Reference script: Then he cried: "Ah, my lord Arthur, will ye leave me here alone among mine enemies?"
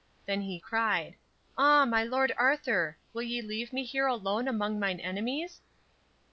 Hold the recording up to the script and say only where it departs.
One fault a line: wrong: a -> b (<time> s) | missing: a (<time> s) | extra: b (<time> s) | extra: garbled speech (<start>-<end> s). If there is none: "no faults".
no faults